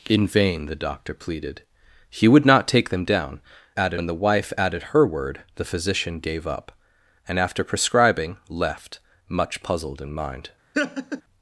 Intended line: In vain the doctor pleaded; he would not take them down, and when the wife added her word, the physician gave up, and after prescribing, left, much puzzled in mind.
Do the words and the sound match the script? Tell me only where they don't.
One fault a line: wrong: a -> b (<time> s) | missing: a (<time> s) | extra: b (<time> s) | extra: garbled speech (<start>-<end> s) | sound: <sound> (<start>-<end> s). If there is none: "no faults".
wrong: and -> added (3.8 s)
sound: laugh (10.7-11.2 s)